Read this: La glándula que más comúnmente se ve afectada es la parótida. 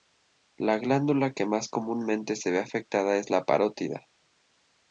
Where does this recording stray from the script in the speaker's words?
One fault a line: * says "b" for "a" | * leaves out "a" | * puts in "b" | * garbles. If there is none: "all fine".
all fine